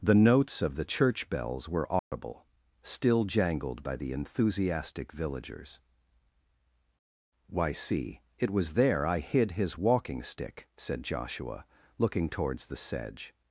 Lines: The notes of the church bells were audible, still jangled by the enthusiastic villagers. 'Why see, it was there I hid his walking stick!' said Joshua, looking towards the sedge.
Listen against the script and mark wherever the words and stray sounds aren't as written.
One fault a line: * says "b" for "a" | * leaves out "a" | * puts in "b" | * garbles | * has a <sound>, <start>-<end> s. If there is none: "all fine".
* has a dropout, 2.0-2.1 s